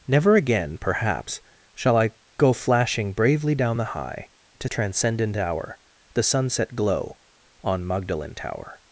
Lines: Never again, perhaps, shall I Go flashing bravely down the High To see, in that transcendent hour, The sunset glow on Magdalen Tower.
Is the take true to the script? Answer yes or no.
no